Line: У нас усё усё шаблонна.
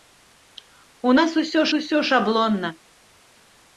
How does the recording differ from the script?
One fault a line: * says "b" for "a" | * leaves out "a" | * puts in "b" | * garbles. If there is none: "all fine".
all fine